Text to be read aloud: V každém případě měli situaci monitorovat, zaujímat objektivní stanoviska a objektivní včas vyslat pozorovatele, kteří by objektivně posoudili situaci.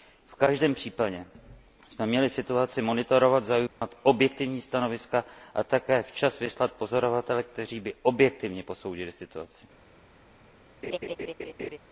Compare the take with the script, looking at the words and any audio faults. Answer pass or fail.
fail